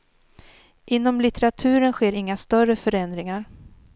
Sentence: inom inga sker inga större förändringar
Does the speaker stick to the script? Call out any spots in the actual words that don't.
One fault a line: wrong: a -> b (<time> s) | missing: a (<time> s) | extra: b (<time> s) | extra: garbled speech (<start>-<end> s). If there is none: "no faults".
wrong: inga -> litteraturen (1.2 s)